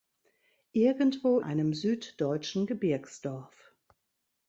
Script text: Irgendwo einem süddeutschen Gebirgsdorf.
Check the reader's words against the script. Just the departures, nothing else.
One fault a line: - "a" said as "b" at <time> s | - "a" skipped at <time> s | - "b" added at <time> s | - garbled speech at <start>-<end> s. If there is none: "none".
none